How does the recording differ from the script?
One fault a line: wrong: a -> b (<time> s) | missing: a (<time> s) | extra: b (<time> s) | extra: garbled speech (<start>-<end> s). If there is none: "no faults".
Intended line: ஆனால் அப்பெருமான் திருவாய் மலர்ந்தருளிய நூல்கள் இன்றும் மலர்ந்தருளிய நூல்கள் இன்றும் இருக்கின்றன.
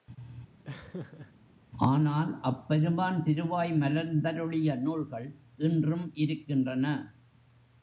missing: மலர்ந்தருளிய நூல்கள் இன்றும் (6.1 s)